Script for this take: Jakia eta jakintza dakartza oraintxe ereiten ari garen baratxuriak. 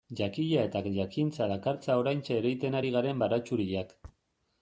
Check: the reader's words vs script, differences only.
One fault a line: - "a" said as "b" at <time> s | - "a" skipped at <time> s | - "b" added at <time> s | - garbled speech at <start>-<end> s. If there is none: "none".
none